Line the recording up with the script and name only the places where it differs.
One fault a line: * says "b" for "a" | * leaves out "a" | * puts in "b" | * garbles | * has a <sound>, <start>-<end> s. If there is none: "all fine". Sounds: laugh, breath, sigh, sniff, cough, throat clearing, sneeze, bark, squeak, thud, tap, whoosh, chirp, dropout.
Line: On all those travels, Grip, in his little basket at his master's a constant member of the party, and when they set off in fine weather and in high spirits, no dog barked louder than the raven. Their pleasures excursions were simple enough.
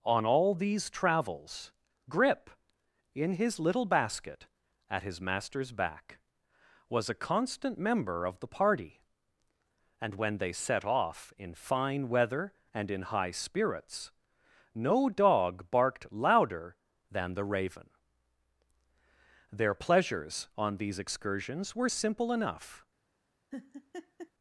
* says "these" for "those"
* puts in "back was"
* puts in "on these"
* has a laugh, 23.5-24.3 s